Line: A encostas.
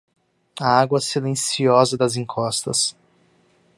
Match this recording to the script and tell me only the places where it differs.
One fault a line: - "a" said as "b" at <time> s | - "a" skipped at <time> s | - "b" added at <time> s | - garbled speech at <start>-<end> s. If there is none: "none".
- "água silenciosa das" added at 0.8 s